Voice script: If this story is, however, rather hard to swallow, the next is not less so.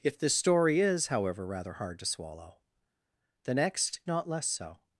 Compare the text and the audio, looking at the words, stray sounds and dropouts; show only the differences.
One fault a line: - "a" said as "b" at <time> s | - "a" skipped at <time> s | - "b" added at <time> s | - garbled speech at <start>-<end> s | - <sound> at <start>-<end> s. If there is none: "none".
- "is" skipped at 4.0 s